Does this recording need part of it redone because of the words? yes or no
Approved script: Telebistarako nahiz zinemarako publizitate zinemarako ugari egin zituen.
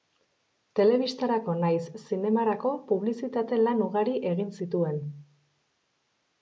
yes